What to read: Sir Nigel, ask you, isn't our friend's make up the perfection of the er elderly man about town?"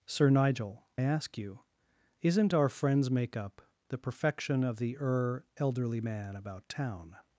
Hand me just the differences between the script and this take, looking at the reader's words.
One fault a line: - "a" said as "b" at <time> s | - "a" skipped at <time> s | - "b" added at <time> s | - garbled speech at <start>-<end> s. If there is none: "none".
none